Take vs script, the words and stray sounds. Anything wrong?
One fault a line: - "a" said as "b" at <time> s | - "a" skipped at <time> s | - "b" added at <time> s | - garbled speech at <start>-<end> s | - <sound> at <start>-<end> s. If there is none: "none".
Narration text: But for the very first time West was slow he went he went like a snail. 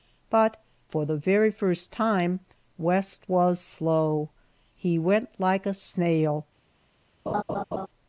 - "he went" skipped at 5.3 s
- laugh at 7.3-7.9 s